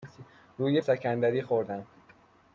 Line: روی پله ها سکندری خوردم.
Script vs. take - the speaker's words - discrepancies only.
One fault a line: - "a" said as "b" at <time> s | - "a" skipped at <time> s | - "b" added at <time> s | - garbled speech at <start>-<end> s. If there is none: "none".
- "پله ها" skipped at 0.8 s